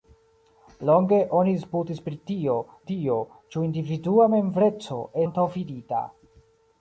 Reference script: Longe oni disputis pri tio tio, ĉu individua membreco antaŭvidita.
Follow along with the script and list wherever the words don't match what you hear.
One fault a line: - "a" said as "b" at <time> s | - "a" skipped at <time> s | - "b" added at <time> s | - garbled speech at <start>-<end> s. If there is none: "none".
none